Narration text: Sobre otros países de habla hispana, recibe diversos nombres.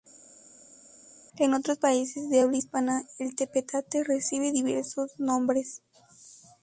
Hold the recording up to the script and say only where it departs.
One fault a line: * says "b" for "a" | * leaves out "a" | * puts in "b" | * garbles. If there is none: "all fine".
* says "En" for "Sobre"
* puts in "el tepetate"